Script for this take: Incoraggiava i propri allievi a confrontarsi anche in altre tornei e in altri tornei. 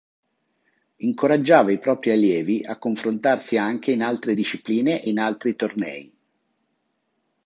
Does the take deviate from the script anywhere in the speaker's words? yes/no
yes